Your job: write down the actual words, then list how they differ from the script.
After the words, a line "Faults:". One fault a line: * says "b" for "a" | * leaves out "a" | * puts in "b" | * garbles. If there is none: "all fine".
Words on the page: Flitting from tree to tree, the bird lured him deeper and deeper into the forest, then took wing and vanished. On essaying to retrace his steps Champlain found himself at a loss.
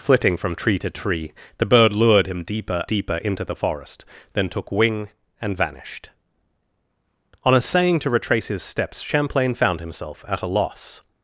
Flitting from tree to tree, the bird lured him deeper deeper into the forest, then took wing and vanished. On essaying to retrace his steps Champlain found himself at a loss.
Faults:
* leaves out "and"